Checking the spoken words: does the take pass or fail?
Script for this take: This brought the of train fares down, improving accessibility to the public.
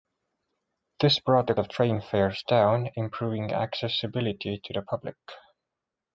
pass